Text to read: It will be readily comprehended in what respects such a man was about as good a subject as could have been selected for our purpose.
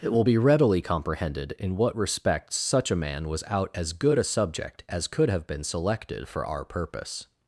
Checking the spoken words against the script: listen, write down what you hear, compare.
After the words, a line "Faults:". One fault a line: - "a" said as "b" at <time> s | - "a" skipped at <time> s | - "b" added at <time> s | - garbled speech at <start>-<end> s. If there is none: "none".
It will be readily comprehended in what respects such a man was out as good a subject as could have been selected for our purpose.
Faults:
- "about" said as "out" at 3.5 s